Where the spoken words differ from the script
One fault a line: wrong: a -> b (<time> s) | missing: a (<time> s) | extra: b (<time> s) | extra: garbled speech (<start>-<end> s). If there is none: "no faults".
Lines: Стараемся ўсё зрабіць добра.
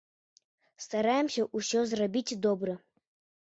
no faults